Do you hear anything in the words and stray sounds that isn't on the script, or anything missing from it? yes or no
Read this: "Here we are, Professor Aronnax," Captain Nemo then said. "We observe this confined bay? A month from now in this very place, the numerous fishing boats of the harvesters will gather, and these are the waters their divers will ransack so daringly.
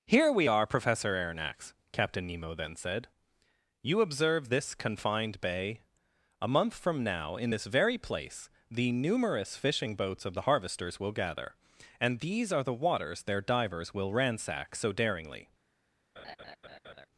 yes